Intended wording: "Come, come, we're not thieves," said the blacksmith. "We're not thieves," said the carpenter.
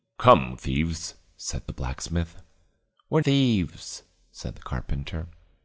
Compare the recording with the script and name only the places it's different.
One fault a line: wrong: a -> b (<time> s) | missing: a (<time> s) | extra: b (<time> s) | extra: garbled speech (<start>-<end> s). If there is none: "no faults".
missing: come we're not (0.6 s)
missing: not (3.2 s)